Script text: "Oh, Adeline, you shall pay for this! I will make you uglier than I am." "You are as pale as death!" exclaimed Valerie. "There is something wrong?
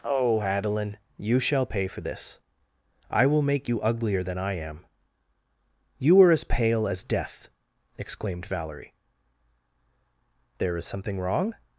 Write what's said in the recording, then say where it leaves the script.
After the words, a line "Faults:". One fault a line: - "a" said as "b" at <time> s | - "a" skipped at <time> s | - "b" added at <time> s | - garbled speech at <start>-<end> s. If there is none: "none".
"Oh, Adeline, you shall pay for this! I will make you uglier than I am." "You are as pale as death!" exclaimed Valerie. "There is something wrong?
Faults:
none